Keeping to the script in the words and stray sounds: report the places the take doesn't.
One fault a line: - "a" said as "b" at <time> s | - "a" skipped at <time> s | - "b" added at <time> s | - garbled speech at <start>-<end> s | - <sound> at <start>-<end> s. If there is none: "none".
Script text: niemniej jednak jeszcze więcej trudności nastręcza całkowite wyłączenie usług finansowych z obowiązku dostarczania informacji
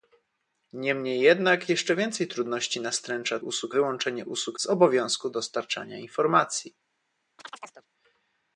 - "całkowite" said as "usług" at 3.4 s
- "finansowych" skipped at 4.6 s
- chirp at 7.4-7.9 s